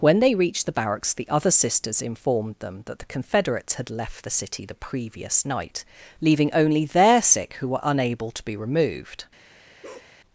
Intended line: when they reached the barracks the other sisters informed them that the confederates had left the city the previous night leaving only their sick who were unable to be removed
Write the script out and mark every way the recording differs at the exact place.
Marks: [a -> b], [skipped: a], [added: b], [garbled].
when they reached the barracks the other sisters informed them that the confederates had left the city the previous night leaving only their sick who were unable to be removed